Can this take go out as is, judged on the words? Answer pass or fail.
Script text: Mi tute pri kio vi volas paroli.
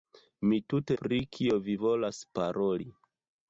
pass